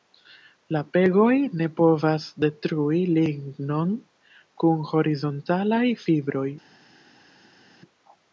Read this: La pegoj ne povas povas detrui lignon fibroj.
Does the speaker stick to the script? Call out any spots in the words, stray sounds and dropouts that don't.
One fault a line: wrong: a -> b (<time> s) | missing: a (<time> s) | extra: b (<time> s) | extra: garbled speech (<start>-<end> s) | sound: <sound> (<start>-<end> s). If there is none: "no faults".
missing: povas (2.2 s)
extra: kun horizontalaj (4.7 s)